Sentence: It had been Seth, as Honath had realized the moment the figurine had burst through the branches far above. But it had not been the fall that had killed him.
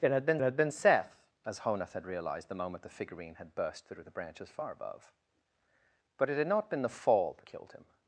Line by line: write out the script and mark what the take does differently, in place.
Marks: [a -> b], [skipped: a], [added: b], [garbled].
It had been [added: had been] Seth, as Honath had realized the moment the figurine had burst through the branches far above. But it had not been the fall that [skipped: had] killed him.